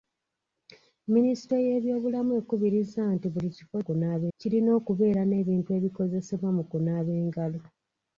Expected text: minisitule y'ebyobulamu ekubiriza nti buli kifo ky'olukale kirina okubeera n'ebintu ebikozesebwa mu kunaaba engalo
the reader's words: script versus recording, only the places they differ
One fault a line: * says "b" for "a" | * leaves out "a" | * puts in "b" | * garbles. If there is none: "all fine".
* says "kunaaba" for "ky'olukale"